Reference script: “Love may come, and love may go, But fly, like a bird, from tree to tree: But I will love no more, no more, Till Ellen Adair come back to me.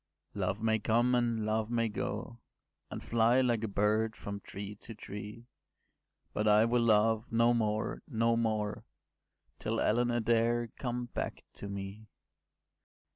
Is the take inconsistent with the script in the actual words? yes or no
yes